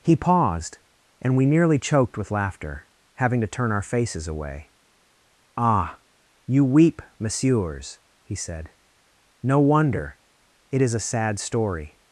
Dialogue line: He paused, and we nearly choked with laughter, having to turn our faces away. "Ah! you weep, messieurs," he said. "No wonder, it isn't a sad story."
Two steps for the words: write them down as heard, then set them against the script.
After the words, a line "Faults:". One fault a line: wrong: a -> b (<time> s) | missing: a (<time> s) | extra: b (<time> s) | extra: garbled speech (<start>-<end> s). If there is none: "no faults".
He paused, and we nearly choked with laughter, having to turn our faces away. "Ah! you weep, messieurs," he said. "No wonder, it is a sad story."
Faults:
wrong: isn't -> is (10.8 s)